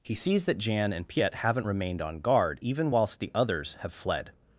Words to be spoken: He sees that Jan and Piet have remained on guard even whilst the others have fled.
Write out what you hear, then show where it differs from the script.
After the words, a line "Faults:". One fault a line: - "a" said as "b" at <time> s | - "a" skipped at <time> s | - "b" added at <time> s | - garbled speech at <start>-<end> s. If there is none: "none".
He sees that Jan and Piet haven't remained on guard even whilst the others have fled.
Faults:
- "have" said as "haven't" at 1.4 s